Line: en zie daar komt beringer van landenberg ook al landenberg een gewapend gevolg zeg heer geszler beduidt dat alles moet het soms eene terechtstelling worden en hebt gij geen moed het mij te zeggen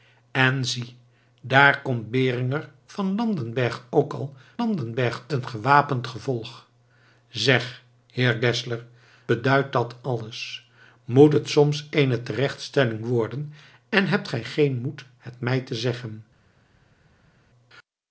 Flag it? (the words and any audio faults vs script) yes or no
no